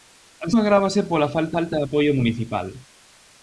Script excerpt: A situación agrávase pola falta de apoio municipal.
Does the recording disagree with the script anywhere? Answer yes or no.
yes